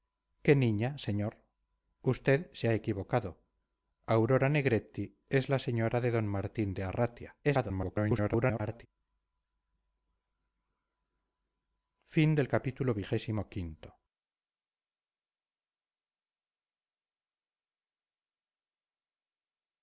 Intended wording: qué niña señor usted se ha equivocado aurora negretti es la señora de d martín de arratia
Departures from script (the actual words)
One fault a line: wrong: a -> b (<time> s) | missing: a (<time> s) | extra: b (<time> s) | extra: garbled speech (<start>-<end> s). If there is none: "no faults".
extra: garbled speech (7.4-8.9 s)